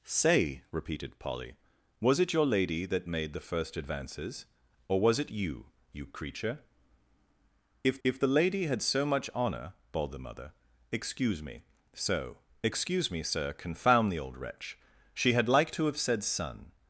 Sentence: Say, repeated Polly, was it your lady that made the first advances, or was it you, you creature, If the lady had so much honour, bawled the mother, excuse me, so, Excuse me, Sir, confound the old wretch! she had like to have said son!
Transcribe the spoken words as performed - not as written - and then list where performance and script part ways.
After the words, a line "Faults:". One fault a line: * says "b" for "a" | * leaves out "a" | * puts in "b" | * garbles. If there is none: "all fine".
Say, repeated Polly, was it your lady that made the first advances, or was it you, you creature, If If the lady had so much honour, bawled the mother, excuse me, so, Excuse me, Sir, confound the old wretch! she had like to have said son!
Faults:
* puts in "If"